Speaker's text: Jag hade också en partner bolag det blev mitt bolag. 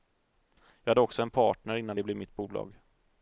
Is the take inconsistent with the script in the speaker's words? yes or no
yes